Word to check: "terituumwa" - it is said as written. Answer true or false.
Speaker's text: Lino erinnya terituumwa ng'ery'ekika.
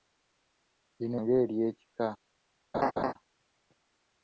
false